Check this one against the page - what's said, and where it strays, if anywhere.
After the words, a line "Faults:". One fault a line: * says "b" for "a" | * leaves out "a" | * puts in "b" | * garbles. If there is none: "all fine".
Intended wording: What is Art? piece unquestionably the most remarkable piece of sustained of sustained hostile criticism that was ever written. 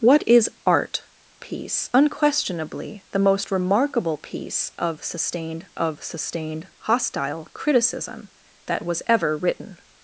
What is Art? piece unquestionably the most remarkable piece of sustained of sustained hostile criticism that was ever written.
Faults:
all fine